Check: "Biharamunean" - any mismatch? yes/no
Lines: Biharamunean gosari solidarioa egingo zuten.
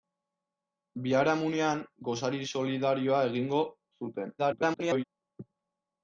no